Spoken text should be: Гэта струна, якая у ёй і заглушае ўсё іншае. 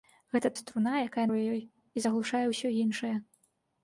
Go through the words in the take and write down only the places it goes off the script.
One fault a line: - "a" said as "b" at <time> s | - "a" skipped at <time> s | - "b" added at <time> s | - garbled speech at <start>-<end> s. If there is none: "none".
none